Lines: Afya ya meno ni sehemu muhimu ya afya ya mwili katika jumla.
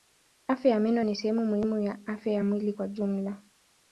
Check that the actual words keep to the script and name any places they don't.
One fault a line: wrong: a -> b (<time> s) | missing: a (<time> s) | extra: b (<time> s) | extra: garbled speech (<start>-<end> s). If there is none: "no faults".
wrong: katika -> kwa (2.7 s)